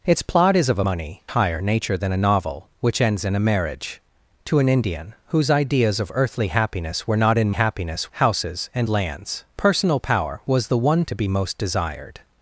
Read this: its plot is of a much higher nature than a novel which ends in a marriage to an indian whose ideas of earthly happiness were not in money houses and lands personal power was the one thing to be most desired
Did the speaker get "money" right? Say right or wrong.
wrong